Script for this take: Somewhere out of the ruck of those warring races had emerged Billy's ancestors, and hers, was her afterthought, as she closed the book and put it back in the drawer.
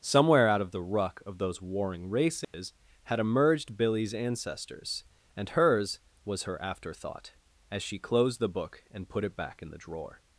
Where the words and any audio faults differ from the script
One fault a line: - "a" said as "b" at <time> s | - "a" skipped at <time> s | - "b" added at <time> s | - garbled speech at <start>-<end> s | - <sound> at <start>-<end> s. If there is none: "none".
- dropout at 2.4-2.5 s